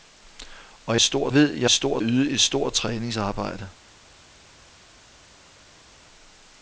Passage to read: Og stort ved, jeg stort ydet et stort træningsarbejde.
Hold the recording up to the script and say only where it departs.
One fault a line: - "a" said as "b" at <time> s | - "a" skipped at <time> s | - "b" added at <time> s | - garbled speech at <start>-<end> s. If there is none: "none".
none